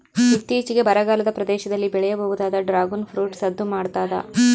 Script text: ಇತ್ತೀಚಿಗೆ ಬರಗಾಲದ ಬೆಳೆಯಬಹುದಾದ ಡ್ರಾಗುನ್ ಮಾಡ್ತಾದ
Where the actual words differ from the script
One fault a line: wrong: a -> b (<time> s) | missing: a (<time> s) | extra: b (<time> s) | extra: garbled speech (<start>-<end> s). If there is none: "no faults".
extra: ಪ್ರದೇಶದಲ್ಲಿ (1.3 s)
extra: ಫ್ರೂಟ್ ಸದ್ದು (3.1 s)